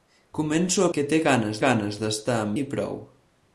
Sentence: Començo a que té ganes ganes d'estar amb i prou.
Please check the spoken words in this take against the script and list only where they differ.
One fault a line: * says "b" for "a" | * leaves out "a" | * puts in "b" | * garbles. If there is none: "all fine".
all fine